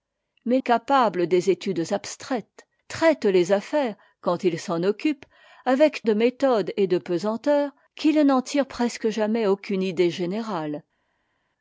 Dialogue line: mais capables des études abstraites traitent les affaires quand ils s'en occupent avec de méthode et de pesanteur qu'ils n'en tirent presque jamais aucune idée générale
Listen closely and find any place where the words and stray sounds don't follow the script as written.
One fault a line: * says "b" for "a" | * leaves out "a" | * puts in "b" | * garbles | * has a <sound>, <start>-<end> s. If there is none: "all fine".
all fine